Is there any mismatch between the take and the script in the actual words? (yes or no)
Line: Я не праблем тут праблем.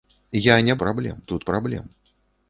no